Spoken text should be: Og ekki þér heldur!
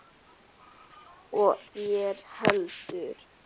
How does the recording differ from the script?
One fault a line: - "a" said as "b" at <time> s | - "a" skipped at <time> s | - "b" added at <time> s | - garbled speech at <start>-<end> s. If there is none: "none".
- "ekki" skipped at 1.5 s